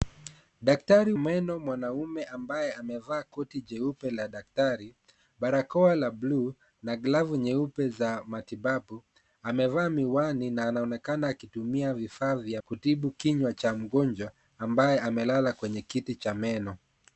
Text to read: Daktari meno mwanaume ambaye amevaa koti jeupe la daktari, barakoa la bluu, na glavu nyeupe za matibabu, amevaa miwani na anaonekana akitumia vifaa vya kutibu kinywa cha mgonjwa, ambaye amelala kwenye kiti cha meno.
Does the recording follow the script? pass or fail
pass